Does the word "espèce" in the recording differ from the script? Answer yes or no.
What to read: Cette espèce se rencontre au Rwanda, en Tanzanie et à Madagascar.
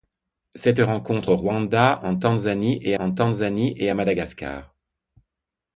yes